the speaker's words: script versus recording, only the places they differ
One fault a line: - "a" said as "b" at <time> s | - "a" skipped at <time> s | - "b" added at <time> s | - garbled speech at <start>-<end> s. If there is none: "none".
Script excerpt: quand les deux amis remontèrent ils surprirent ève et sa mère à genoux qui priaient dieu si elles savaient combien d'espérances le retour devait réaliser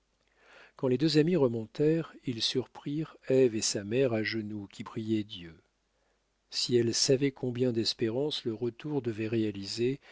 none